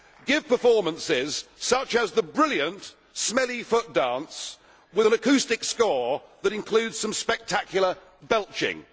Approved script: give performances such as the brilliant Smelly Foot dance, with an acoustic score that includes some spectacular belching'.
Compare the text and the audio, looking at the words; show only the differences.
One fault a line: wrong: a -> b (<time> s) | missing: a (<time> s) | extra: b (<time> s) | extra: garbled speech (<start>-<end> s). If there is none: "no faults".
no faults